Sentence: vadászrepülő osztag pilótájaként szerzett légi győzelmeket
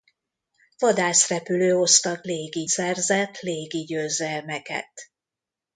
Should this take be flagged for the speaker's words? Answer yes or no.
yes